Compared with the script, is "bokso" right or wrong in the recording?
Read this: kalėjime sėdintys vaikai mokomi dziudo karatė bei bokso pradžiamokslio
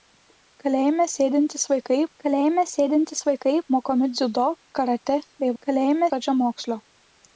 wrong